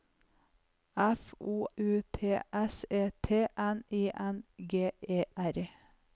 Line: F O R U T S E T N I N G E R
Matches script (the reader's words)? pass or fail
fail